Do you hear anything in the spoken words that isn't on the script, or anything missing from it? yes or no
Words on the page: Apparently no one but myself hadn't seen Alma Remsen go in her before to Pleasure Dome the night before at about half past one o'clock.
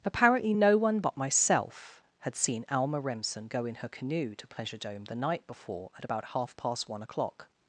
yes